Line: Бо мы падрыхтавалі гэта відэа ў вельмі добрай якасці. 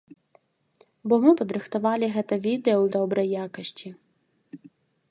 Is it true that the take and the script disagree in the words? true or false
true